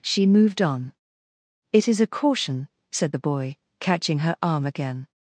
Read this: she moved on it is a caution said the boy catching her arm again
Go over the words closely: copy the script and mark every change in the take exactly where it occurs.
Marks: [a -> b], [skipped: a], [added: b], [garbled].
she moved on it is a caution said the boy catching her arm again